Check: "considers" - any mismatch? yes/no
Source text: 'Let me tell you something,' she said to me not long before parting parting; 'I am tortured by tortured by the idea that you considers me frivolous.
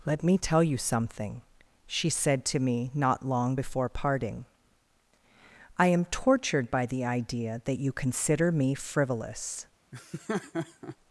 yes